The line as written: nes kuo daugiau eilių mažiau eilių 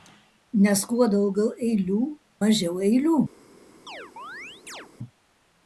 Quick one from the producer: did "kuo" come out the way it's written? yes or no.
yes